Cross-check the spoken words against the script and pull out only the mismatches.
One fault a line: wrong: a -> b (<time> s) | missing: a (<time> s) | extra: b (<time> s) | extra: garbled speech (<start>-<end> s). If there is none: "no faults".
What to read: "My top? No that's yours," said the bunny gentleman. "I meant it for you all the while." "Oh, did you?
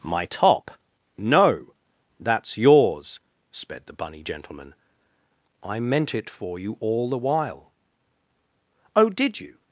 wrong: said -> sped (3.5 s)